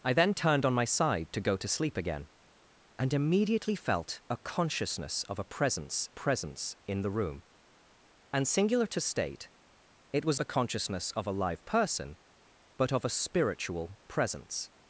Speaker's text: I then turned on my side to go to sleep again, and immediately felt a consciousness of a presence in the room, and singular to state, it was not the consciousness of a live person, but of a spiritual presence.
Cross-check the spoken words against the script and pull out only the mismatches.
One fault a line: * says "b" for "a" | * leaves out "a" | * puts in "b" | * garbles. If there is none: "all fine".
* puts in "presence"
* leaves out "not"